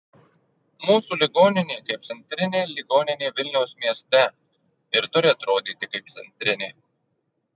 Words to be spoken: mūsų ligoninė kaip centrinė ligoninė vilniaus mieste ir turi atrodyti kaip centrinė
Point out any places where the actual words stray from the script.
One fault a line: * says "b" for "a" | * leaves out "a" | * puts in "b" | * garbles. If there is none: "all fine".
all fine